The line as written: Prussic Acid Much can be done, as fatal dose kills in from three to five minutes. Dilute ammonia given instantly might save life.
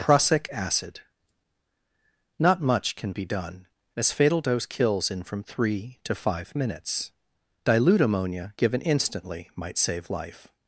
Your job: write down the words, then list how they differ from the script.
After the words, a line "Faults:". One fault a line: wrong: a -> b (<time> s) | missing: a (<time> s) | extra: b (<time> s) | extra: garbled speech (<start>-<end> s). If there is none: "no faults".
Prussic Acid Not much can be done, as fatal dose kills in from three to five minutes. Dilute ammonia given instantly might save life.
Faults:
extra: Not (2.4 s)